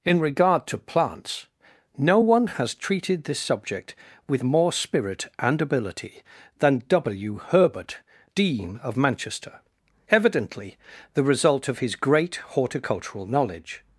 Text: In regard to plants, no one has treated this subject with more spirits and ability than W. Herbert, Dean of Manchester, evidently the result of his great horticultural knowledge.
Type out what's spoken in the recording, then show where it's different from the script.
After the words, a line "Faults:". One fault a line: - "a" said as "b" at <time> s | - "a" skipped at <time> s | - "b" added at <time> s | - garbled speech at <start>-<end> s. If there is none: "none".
In regard to plants, no one has treated this subject with more spirit and ability than W. Herbert, Dean of Manchester, evidently the result of his great horticultural knowledge.
Faults:
- "spirits" said as "spirit" at 4.7 s